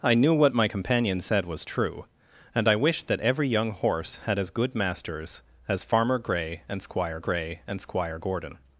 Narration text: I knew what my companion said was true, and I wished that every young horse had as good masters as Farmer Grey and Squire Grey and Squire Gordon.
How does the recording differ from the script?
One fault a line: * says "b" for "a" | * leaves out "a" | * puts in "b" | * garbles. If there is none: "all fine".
all fine